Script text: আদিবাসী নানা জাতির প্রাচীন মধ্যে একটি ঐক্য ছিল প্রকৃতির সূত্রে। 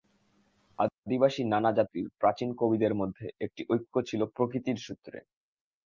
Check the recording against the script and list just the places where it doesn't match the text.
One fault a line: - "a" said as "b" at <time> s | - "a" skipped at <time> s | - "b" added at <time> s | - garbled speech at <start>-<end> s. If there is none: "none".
- "কবিদের" added at 2.6 s